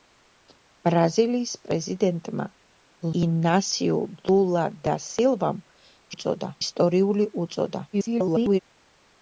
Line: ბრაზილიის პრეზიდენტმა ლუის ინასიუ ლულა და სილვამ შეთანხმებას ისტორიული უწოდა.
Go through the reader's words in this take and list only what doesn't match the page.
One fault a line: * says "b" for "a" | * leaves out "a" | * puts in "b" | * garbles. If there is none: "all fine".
* leaves out "ლუის"
* says "უწოდა" for "შეთანხმებას"
* garbles